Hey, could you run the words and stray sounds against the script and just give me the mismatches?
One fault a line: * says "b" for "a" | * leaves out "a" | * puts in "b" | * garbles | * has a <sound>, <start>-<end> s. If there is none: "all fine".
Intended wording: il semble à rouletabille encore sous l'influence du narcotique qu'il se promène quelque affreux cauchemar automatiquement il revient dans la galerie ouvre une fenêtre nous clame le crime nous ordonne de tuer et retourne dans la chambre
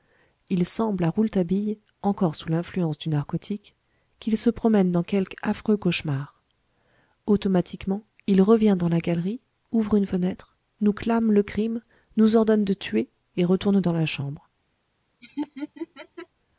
* puts in "dans"
* has a laugh, 15.2-16.3 s